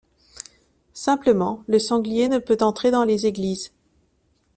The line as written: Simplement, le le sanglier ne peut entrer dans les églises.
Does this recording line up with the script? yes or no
no